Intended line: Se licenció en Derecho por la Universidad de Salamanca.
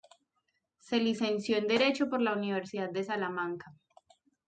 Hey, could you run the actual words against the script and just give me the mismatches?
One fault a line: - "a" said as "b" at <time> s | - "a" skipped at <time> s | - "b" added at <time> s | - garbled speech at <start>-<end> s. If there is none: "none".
none